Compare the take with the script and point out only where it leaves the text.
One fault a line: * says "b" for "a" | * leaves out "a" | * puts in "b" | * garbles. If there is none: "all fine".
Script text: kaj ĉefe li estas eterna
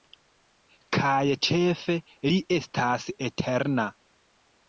all fine